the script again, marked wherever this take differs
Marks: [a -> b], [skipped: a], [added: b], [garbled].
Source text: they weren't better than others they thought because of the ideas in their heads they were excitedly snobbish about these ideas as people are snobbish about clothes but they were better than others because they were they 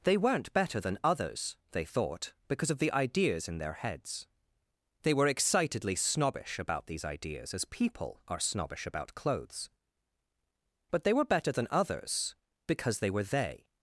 they weren't better than others they thought because of the ideas in their heads they were excitedly snobbish about these ideas as people are snobbish about clothes but they were better than others because they were they